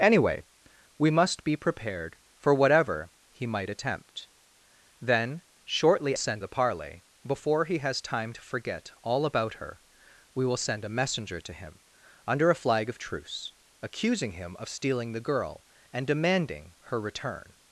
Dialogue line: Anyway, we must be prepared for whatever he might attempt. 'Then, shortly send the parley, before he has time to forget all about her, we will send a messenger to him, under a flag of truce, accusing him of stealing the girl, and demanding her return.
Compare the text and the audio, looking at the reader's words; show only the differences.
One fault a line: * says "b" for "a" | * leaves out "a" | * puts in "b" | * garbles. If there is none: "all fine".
all fine